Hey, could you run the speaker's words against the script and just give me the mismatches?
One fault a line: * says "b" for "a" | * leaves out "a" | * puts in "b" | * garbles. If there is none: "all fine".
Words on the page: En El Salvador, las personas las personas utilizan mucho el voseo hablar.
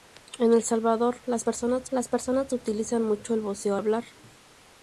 all fine